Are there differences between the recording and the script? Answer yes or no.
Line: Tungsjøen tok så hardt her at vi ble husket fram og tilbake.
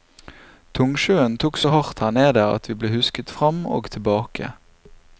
yes